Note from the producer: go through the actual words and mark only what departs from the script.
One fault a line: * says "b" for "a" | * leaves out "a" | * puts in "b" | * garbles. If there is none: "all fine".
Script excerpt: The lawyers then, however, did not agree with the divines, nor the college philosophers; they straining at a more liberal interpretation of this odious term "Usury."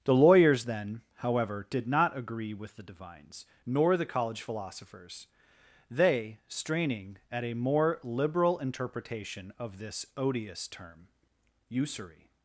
all fine